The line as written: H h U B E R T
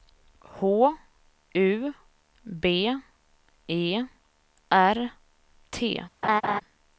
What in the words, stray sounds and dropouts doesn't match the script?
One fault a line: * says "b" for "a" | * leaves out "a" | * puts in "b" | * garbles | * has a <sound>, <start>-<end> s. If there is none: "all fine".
* leaves out "h"
* has a laugh, 6.2-6.6 s